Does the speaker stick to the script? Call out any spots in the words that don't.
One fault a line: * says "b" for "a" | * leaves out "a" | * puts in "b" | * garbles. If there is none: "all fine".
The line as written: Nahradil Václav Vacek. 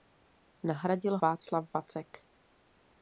all fine